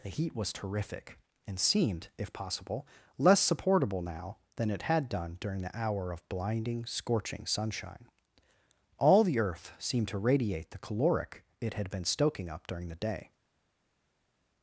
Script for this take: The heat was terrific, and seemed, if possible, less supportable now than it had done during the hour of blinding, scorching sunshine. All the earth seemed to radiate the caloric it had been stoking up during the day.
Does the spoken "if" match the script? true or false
true